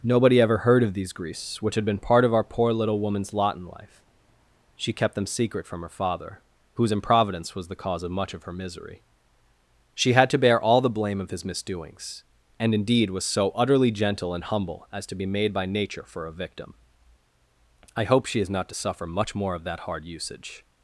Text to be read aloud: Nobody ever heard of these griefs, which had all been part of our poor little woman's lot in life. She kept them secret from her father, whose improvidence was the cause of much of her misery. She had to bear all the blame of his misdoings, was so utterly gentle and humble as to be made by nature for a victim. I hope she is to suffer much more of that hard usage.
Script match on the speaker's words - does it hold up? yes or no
no